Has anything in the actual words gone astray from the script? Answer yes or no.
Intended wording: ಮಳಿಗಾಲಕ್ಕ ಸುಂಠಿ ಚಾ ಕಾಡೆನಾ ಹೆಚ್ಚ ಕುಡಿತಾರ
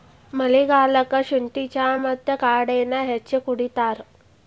yes